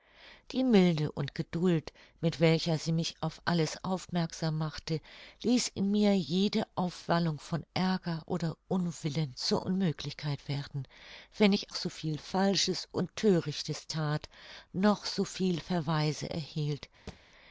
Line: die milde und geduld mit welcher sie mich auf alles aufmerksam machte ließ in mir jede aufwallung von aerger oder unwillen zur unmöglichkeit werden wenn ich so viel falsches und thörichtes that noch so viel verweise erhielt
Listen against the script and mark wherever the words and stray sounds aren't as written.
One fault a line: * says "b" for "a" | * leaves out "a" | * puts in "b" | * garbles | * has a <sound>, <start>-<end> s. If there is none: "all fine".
* has a thud, 17.1-17.2 s